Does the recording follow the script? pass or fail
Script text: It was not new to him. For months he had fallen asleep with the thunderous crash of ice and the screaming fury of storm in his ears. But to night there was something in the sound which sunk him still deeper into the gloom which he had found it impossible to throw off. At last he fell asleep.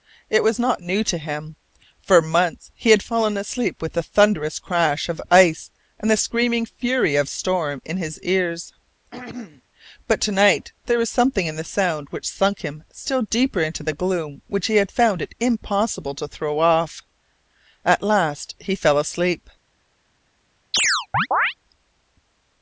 pass